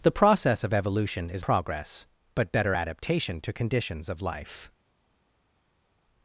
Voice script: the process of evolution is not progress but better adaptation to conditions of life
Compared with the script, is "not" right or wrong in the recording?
wrong